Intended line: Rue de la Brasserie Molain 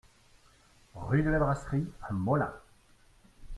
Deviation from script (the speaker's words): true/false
true